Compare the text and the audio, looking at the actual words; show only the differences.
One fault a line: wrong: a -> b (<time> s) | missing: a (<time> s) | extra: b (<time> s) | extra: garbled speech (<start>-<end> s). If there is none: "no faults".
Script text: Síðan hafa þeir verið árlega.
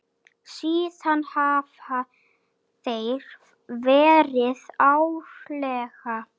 no faults